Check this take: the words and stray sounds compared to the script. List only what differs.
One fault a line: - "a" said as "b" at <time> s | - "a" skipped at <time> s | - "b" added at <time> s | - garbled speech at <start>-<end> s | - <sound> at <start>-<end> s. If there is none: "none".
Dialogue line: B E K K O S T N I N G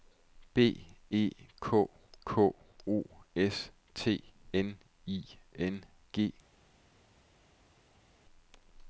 none